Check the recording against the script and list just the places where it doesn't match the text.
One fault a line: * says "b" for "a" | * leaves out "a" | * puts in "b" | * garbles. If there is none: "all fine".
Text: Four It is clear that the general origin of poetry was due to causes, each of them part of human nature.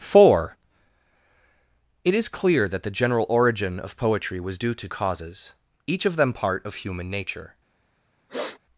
all fine